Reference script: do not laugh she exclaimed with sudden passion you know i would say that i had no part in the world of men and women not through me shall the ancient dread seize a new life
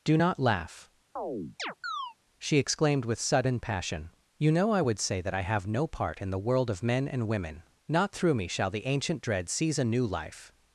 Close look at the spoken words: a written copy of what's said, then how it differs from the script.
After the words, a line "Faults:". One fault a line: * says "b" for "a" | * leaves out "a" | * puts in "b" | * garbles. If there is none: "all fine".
do not laugh she exclaimed with sudden passion you know i would say that i have no part in the world of men and women not through me shall the ancient dread seize a new life
Faults:
* says "have" for "had"